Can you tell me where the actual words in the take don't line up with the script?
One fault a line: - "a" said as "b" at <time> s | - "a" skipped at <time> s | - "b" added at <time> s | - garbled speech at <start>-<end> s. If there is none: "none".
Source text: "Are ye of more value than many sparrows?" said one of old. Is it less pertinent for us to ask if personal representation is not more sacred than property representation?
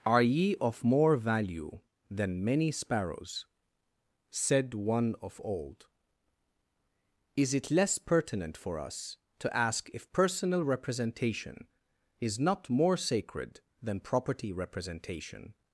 none